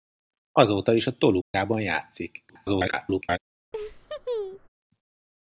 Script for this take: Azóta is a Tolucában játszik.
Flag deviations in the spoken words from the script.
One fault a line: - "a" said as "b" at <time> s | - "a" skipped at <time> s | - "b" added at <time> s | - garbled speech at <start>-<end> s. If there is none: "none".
- garbled speech at 2.5-3.4 s